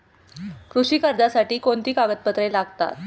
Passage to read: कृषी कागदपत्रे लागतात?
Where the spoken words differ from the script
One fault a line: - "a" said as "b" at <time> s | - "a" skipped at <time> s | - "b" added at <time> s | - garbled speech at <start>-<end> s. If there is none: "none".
- "कर्जासाठी कोणती" added at 1.0 s